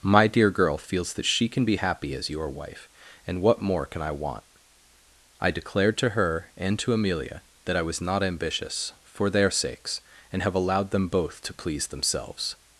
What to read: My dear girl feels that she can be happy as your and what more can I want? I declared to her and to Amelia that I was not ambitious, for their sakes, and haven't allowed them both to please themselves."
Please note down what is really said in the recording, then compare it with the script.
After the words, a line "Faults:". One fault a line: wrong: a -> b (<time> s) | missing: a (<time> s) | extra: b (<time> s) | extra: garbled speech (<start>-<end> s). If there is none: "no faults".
My dear girl feels that she can be happy as your wife, and what more can I want? I declared to her and to Amelia that I was not ambitious, for their sakes, and have allowed them both to please themselves."
Faults:
extra: wife (2.5 s)
wrong: haven't -> have (10.4 s)